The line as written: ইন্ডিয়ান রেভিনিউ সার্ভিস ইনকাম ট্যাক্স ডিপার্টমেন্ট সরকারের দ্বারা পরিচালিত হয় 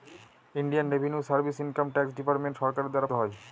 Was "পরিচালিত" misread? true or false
true